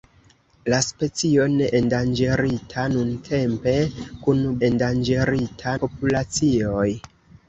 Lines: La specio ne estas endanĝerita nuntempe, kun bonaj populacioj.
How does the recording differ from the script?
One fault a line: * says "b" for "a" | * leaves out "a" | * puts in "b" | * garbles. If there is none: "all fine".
* leaves out "estas"
* says "endanĝerita" for "bonaj"